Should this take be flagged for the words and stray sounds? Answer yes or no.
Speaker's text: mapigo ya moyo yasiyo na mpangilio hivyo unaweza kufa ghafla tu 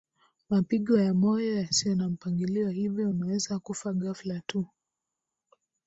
no